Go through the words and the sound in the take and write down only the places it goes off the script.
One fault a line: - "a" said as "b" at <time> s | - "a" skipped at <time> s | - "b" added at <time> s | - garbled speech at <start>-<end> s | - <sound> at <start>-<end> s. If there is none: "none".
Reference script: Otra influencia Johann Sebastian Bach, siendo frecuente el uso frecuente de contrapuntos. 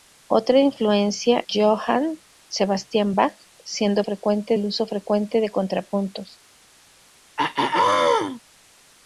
- throat clearing at 7.4-8.4 s